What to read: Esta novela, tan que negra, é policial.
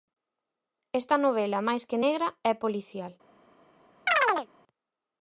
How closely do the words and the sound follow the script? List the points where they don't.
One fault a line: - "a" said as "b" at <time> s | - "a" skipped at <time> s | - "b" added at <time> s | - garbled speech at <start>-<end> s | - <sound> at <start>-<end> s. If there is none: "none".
- "tan" said as "máis" at 1.7 s
- chirp at 4.1-4.5 s